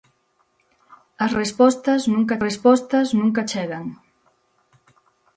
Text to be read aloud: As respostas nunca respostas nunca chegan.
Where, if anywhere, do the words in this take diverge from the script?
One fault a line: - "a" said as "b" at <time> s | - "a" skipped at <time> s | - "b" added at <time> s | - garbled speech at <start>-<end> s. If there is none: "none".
none